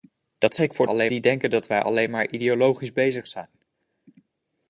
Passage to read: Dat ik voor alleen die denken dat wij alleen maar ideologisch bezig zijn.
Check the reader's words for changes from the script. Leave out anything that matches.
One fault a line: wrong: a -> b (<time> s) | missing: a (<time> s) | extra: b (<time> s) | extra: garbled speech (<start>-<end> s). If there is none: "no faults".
no faults